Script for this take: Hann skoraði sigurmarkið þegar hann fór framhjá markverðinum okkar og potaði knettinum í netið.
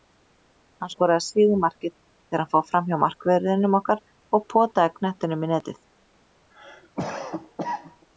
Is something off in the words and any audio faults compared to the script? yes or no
yes